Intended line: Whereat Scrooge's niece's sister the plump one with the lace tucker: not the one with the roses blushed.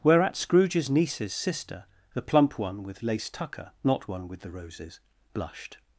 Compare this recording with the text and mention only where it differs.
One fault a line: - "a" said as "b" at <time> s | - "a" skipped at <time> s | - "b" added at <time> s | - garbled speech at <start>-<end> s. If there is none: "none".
- "the" skipped at 3.0 s
- "the" skipped at 4.1 s